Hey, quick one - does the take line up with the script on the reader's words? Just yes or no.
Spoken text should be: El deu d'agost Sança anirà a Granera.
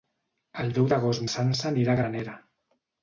yes